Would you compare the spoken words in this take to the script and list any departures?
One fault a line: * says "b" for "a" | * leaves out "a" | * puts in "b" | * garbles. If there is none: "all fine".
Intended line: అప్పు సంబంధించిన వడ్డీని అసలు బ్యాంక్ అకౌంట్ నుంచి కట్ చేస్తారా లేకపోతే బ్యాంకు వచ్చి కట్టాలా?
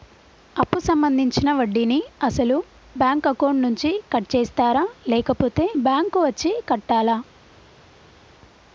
all fine